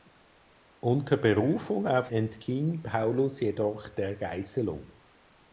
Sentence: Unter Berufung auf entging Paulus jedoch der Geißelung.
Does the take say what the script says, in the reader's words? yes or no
yes